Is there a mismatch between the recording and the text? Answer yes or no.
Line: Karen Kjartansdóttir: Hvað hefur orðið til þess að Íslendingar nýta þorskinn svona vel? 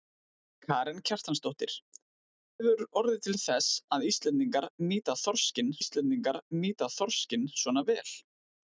yes